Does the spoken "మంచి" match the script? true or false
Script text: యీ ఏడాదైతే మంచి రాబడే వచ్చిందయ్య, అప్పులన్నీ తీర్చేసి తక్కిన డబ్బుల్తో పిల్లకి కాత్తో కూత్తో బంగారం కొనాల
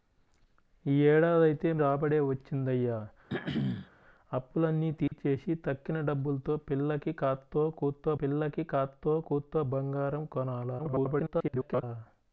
false